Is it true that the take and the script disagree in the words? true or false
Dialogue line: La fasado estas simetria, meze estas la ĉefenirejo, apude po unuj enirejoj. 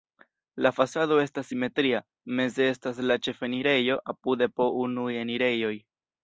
false